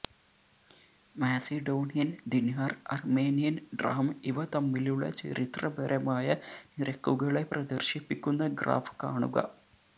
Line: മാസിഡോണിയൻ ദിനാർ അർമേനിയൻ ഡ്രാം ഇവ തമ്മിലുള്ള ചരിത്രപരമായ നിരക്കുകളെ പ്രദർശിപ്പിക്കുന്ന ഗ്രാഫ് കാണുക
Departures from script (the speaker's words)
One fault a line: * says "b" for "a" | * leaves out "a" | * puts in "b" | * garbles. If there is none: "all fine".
all fine